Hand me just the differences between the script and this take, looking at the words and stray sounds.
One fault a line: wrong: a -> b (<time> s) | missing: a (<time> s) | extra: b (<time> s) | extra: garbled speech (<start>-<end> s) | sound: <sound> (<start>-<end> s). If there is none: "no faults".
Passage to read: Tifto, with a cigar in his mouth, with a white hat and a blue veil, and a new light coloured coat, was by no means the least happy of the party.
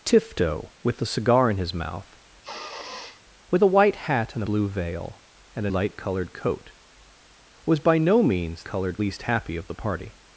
sound: sniff (2.4-3.2 s)
missing: a (4.4 s)
missing: new (5.7 s)
wrong: the -> coloured (8.6 s)